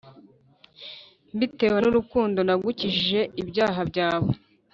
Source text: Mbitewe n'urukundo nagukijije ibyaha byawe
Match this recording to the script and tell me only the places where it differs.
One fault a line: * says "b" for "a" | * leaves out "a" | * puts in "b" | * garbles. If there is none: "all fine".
all fine